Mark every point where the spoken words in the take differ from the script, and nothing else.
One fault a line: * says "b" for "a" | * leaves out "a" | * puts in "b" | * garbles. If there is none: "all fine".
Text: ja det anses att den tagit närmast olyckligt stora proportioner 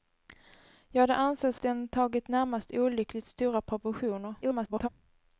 * leaves out "att"
* garbles